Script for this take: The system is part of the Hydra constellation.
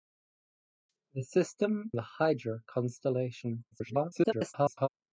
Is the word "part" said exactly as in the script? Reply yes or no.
no